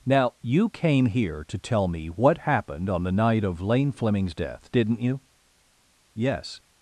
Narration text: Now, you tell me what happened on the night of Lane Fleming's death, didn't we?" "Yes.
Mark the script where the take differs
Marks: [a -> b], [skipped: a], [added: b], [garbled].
Now, you [added: came here to] tell me what happened on the night of Lane Fleming's death, didn't [we?" -> you] "Yes.